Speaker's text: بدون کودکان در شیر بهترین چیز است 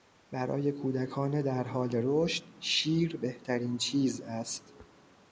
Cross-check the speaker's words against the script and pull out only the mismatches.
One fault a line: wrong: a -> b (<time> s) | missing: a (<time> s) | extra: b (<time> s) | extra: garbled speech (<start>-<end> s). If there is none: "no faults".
wrong: بدون -> برای (0.3 s)
extra: حال رشد (1.6 s)